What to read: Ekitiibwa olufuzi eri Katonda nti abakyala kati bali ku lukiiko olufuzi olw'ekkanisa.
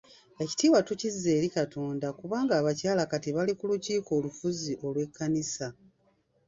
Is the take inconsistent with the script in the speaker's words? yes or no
yes